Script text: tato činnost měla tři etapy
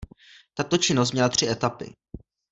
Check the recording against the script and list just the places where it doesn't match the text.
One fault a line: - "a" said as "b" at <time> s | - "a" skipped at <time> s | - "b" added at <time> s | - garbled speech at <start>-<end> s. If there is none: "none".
none